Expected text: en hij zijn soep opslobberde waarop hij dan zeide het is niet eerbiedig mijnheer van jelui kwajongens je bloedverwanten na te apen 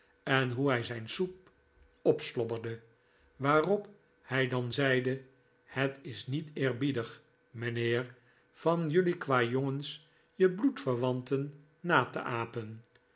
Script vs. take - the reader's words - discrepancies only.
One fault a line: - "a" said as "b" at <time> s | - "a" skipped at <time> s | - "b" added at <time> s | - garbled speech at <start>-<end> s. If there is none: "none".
- "hoe" added at 0.5 s